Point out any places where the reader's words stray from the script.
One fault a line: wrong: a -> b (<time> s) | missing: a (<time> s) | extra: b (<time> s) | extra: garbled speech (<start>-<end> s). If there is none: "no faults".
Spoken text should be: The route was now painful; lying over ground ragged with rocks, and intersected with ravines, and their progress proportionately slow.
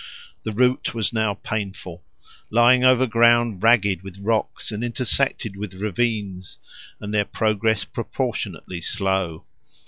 no faults